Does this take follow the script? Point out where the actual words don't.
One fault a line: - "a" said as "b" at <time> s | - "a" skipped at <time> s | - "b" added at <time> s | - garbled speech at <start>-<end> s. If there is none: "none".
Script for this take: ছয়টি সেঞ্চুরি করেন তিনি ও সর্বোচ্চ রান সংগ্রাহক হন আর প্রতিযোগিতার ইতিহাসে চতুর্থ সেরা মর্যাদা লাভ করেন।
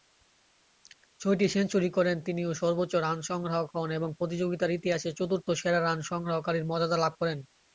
- "আর" said as "এবং" at 4.0 s
- "রান সংগ্রহকারীর" added at 5.8 s